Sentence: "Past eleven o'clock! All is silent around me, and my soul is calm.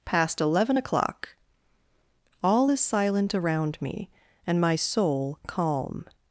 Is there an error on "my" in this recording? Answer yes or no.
no